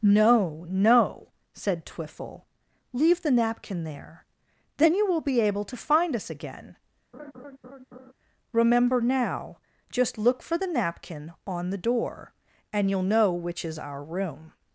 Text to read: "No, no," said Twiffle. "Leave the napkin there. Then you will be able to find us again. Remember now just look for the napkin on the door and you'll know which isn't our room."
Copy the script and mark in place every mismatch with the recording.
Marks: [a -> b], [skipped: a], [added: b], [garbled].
"No, no," said Twiffle. "Leave the napkin there. Then you will be able to find us again. Remember now just look for the napkin on the door and you'll know which [isn't -> is] our room."